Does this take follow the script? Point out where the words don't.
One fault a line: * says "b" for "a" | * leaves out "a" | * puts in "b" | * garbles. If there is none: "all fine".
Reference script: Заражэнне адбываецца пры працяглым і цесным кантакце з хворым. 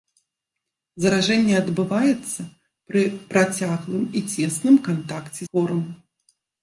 * leaves out "з"